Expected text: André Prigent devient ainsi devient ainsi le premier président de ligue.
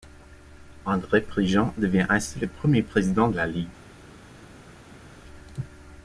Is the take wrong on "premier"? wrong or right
right